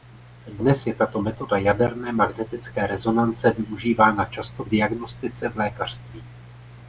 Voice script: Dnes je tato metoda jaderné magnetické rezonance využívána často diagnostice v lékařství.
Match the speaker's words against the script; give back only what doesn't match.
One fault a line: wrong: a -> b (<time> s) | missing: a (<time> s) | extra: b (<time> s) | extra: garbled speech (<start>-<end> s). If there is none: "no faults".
no faults